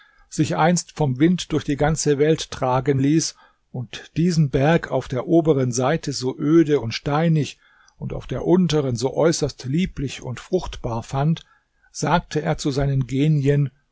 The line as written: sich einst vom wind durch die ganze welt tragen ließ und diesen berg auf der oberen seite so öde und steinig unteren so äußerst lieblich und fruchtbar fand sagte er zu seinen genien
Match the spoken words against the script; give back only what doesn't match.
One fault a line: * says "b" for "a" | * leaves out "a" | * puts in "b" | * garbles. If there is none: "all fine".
* puts in "und auf der"